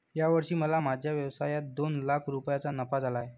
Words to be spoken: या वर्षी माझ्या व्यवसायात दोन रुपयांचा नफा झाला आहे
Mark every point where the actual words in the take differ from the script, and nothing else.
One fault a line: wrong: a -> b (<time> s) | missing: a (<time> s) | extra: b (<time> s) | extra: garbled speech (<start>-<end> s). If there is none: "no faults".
extra: मला (0.6 s)
extra: लाख (2.0 s)